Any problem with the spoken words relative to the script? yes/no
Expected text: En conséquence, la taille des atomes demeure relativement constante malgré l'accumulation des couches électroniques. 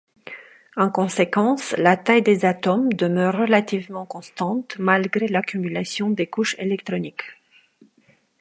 no